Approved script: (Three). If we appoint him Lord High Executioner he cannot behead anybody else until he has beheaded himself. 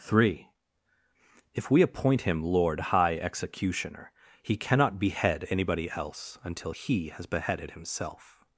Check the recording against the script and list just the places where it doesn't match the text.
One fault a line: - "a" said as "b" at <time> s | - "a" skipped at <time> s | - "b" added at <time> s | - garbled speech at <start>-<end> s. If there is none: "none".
none